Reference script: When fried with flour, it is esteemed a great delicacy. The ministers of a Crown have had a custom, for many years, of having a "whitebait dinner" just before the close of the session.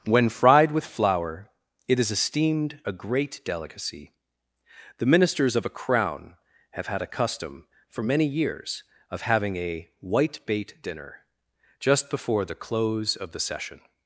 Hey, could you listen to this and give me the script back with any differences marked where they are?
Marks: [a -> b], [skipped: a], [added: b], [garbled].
When fried with flour, it is esteemed a great delicacy. The ministers of a Crown have had a custom, for many years, of having a "whitebait dinner" just before the close of the session.